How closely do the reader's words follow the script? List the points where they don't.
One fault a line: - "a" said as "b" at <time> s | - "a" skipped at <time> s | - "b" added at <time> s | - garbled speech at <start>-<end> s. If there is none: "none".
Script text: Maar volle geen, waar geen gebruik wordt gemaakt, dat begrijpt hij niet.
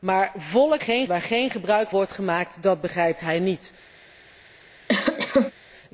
none